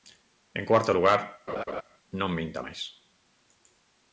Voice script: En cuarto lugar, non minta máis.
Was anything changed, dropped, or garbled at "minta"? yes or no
no